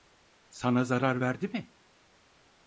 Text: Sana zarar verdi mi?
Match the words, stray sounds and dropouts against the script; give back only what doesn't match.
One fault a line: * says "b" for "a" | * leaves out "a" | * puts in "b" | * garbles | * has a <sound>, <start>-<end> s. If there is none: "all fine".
all fine